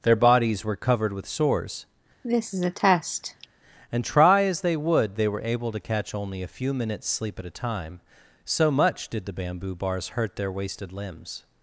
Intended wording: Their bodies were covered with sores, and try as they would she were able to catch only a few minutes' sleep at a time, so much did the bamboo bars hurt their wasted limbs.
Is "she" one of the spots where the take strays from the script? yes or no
yes